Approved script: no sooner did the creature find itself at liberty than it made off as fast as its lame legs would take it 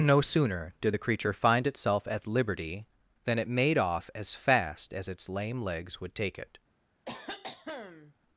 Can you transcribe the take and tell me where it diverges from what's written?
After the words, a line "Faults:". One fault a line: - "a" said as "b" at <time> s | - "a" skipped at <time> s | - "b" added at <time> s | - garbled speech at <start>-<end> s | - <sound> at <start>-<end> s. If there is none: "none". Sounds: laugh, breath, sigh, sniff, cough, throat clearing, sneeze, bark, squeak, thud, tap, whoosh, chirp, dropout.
no sooner did the creature find itself at liberty than it made off as fast as its lame legs would take it
Faults:
- cough at 7.1-8.1 s